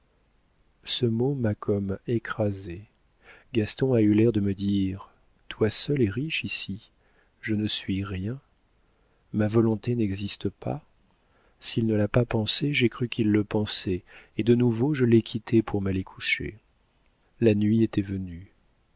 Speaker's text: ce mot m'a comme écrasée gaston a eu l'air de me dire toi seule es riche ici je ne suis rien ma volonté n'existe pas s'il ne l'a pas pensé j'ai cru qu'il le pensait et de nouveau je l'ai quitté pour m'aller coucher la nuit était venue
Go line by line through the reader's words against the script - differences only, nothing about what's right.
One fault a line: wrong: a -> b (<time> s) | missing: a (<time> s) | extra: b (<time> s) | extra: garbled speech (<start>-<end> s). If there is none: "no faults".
no faults